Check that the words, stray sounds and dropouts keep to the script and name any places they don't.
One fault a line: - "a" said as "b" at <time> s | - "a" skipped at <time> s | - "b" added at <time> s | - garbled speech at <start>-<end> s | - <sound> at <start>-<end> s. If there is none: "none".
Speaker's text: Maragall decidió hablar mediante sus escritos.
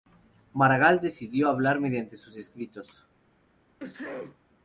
- sneeze at 3.8-4.4 s